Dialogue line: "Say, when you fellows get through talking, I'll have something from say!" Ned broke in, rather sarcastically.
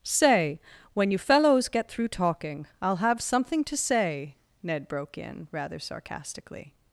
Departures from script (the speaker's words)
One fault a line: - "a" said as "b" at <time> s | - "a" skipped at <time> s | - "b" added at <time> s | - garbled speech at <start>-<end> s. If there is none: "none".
- "from" said as "to" at 3.6 s